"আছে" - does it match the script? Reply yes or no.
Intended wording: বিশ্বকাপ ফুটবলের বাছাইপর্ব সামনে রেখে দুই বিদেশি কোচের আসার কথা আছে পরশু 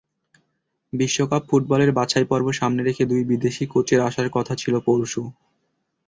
no